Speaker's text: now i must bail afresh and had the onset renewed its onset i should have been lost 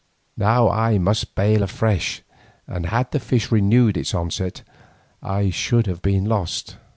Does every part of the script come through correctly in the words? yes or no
no